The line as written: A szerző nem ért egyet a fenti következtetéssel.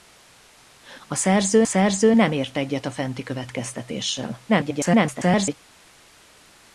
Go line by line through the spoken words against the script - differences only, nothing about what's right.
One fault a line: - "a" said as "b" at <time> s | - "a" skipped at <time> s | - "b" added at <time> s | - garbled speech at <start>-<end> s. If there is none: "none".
- "szerző" added at 1.6 s
- garbled speech at 4.5-5.5 s